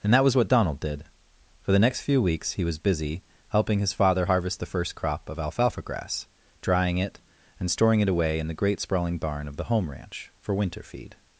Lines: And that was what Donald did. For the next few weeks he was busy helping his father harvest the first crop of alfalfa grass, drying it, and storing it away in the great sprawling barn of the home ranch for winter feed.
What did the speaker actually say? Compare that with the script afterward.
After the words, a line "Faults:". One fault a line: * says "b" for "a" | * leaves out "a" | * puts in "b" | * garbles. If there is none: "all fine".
And that was what Donald did. For the next few weeks he was busy helping his father harvest the first crop of alfalfa grass, drying it, and storing it away in the great sprawling barn of the home ranch for winter feed.
Faults:
all fine